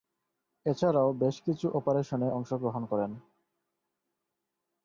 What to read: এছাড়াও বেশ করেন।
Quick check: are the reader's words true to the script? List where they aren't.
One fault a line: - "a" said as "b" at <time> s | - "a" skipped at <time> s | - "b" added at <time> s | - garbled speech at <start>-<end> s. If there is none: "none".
- "কিছু অপারেশনে অংশগ্রহণ" added at 1.4 s